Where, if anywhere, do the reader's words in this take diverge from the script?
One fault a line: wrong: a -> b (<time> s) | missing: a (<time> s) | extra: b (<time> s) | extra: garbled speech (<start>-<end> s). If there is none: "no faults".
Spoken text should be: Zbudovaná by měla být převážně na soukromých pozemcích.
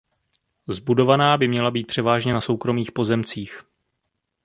no faults